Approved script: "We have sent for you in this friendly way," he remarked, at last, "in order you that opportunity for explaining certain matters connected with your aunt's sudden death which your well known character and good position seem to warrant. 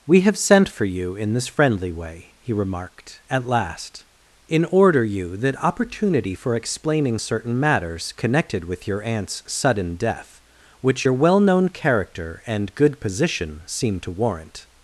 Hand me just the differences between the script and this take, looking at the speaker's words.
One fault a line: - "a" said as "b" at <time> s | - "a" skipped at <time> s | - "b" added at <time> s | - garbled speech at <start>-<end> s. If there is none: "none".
none